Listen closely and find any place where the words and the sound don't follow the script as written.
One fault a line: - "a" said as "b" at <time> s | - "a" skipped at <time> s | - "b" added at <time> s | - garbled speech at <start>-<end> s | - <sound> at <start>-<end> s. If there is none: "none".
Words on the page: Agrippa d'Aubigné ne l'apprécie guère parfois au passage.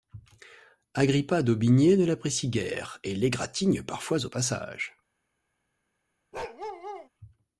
- "et l'égratigne" added at 3.0 s
- bark at 6.3-7.1 s